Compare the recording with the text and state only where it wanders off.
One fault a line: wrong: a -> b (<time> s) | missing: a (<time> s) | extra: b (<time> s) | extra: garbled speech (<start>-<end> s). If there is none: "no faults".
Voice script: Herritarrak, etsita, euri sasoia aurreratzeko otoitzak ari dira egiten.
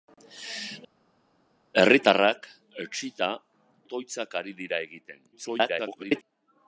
missing: euri sasoia aurreratzeko (3.3 s)
extra: garbled speech (5.3-6.2 s)